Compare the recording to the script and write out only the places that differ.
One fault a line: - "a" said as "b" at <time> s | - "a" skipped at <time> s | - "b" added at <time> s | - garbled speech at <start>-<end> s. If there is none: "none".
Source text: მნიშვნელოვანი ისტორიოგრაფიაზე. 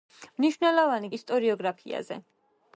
none